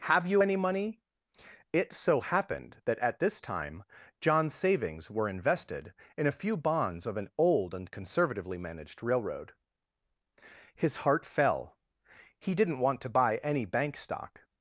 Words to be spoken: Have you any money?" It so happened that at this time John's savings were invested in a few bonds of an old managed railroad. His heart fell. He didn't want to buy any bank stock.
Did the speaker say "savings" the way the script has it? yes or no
yes